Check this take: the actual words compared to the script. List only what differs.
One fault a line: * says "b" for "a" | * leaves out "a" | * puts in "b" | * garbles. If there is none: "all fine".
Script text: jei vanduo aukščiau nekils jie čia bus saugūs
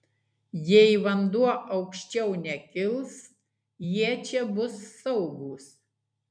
all fine